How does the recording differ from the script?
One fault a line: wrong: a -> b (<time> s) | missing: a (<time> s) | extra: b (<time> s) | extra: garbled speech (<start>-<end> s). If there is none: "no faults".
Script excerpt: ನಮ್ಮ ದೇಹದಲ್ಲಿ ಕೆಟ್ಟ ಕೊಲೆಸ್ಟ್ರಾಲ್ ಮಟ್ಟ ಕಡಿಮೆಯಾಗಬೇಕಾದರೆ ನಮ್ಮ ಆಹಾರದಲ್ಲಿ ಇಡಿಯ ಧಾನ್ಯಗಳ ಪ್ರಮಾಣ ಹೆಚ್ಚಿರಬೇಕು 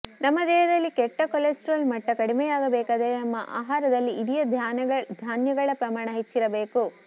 no faults